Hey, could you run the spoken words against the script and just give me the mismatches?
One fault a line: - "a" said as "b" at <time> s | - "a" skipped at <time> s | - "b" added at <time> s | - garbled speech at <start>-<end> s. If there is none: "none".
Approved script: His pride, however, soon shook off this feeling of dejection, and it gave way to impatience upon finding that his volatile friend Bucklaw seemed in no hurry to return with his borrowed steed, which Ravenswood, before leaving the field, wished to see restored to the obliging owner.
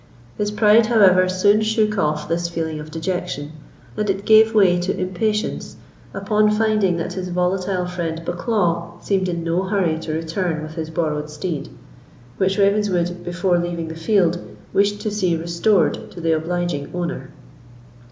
none